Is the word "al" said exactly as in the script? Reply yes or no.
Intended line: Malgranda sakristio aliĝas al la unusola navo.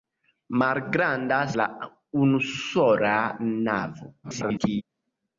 no